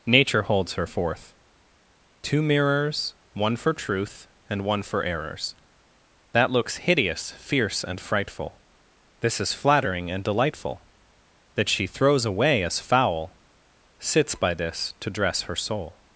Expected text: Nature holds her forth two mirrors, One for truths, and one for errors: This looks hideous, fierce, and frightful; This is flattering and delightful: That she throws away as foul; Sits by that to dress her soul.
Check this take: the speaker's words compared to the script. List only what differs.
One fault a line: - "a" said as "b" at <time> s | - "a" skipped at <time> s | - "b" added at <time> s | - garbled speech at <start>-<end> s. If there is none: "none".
- "truths" said as "truth" at 3.7 s
- "This" said as "That" at 6.3 s
- "that" said as "this" at 14.5 s